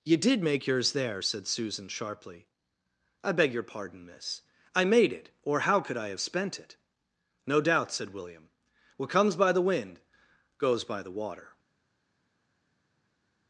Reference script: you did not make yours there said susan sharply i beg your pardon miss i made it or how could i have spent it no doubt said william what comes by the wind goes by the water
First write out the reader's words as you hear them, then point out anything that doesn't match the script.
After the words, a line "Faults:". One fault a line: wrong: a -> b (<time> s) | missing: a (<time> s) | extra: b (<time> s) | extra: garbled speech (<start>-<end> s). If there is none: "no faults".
you did make yours there said susan sharply i beg your pardon miss i made it or how could i have spent it no doubt said william what comes by the wind goes by the water
Faults:
missing: not (0.4 s)